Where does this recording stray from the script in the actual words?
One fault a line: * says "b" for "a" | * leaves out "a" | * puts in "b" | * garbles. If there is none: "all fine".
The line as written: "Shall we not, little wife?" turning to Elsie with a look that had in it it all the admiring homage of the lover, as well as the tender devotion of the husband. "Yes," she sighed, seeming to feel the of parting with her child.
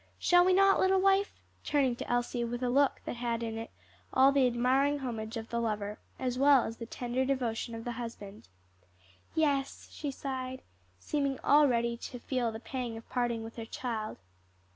* leaves out "it"
* puts in "already"
* puts in "pang"